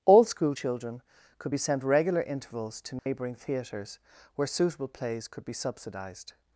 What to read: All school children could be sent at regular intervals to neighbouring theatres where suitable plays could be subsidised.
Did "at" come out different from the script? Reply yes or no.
yes